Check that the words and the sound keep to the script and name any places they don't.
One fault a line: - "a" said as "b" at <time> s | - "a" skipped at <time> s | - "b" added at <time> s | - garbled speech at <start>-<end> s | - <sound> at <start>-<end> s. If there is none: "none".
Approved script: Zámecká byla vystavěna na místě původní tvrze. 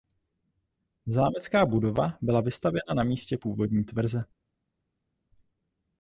- "budova" added at 1.6 s